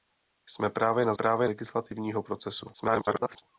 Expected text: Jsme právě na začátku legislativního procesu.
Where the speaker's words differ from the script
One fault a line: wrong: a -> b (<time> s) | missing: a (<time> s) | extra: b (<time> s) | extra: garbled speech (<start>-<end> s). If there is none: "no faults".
wrong: začátku -> právě (1.1 s)
extra: garbled speech (2.7-3.4 s)